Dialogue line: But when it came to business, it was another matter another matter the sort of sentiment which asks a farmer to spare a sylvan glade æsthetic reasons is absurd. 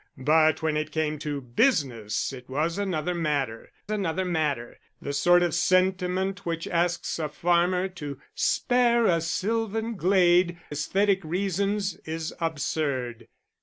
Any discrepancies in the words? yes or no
no